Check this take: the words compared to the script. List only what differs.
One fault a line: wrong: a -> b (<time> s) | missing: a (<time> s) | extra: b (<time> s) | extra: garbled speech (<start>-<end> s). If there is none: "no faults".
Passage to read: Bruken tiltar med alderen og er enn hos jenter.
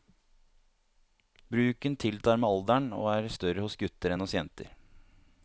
extra: større hos gutter (3.4 s)